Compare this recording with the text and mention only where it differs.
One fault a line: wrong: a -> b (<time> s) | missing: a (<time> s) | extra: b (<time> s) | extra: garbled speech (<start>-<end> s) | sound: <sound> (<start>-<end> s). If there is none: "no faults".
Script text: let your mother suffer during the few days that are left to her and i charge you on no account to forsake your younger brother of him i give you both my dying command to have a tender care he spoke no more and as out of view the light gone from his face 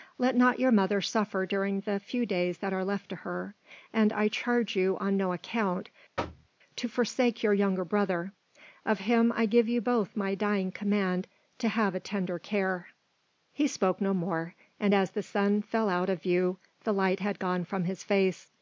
extra: not (0.3 s)
sound: thud (6.2-6.5 s)
extra: the sun fell (15.1 s)
extra: had (17.2 s)